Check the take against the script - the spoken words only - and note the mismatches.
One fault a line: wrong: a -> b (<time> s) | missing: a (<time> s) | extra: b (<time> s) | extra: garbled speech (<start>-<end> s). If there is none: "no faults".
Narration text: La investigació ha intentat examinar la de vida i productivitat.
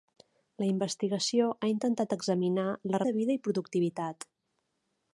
no faults